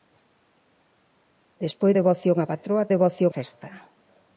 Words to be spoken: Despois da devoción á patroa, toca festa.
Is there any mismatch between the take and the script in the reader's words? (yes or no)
yes